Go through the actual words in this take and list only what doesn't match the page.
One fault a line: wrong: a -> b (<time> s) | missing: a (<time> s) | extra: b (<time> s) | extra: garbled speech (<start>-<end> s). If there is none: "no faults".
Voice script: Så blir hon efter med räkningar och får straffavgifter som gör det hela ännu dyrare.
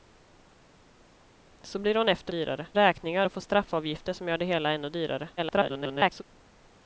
wrong: med -> dyrare (2.3 s)
extra: garbled speech (5.4-6.2 s)